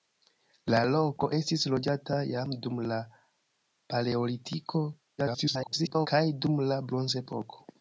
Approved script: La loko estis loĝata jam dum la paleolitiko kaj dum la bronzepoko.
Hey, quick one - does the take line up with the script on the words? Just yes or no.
no